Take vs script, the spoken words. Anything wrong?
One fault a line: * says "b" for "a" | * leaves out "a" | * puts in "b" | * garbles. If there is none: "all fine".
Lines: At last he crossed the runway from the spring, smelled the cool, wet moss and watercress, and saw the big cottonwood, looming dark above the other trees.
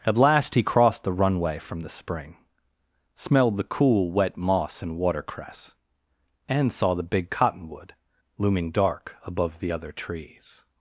all fine